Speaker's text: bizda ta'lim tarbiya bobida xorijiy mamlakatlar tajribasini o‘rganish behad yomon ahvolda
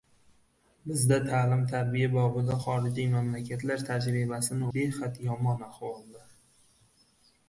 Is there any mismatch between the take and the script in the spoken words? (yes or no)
yes